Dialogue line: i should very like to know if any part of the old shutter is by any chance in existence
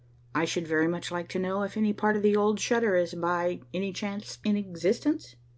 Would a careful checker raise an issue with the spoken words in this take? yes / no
yes